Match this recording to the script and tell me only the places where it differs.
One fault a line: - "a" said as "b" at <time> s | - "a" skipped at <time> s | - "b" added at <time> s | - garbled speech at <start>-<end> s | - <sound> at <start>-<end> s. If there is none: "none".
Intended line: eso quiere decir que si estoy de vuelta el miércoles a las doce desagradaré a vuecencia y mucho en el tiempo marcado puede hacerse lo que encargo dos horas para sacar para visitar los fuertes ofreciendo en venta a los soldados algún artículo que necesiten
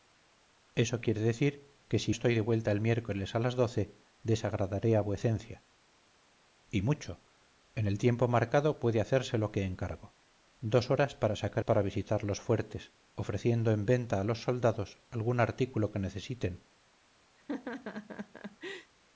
- laugh at 17.4-18.9 s